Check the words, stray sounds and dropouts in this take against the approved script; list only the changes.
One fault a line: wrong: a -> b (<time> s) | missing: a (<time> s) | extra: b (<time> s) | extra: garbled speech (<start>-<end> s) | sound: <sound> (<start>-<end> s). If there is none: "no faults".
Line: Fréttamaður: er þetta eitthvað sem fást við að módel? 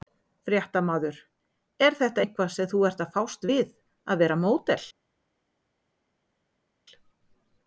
extra: þú ert að (2.7 s)
extra: vera (4.3 s)